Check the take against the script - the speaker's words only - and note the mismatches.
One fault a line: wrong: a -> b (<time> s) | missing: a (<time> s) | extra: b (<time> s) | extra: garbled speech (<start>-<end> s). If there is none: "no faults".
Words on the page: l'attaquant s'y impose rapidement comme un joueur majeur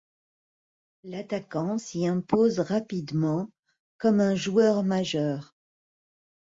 no faults